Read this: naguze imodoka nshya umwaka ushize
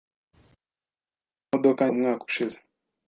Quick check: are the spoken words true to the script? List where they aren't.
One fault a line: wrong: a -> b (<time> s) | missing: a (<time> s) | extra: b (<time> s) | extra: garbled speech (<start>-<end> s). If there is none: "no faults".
missing: nshya (1.8 s)